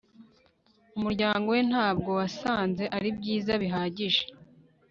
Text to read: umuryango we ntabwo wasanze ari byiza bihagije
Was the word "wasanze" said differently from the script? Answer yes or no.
no